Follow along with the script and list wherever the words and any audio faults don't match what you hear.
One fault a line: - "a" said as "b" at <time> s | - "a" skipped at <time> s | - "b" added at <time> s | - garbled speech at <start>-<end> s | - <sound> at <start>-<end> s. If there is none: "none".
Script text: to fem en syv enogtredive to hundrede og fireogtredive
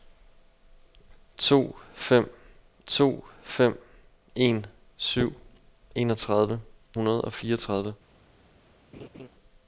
- "to fem" added at 2.9 s
- "to" skipped at 6.6 s
- laugh at 8.9-9.3 s